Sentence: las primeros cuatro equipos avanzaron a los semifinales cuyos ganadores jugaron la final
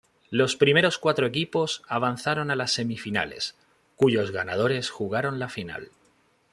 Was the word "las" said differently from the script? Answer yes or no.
yes